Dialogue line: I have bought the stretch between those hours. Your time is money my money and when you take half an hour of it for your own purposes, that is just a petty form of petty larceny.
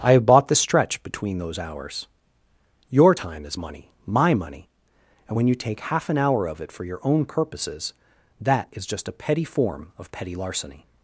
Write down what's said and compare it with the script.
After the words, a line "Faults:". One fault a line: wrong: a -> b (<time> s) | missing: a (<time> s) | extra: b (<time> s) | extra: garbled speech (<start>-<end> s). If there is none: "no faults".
I have bought the stretch between those hours. Your time is money my money and when you take half an hour of it for your own purposes, that is just a petty form of petty larceny.
Faults:
no faults